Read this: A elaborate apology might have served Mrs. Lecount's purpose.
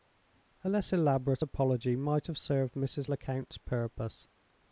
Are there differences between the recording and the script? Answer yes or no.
yes